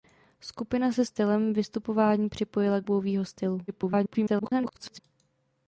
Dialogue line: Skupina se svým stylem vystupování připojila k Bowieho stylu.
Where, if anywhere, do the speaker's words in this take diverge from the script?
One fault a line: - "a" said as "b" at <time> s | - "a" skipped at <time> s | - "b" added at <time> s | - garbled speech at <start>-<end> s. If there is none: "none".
- "svým" skipped at 1.1 s
- garbled speech at 3.7-5.0 s